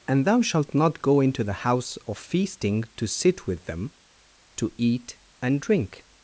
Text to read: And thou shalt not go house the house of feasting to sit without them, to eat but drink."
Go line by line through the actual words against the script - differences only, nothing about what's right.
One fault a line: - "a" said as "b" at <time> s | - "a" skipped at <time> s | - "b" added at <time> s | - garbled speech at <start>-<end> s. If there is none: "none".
- "house" said as "into" at 1.2 s
- "without" said as "with" at 3.5 s
- "but" said as "and" at 5.4 s